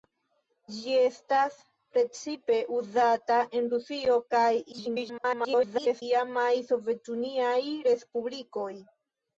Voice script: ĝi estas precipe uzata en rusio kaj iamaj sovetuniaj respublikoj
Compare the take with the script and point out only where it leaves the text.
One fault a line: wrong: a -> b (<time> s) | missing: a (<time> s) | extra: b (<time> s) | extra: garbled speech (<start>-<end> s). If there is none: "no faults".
extra: garbled speech (4.7-6.0 s)